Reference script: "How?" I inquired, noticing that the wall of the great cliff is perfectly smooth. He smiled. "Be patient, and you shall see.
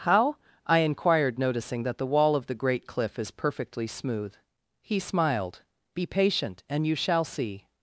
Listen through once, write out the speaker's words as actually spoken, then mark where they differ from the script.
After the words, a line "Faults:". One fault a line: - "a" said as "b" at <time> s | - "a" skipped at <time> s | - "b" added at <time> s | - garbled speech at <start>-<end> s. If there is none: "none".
"How?" I inquired, noticing that the wall of the great cliff is perfectly smooth. He smiled. "Be patient, and you shall see.
Faults:
none